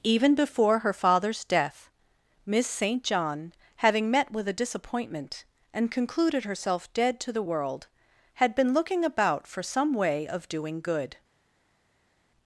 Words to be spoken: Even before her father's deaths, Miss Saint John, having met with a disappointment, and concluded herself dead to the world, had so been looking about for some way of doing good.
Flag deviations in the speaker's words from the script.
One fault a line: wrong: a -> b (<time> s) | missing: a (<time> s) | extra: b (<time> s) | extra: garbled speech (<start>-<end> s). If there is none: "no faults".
wrong: deaths -> death (1.4 s)
missing: so (8.5 s)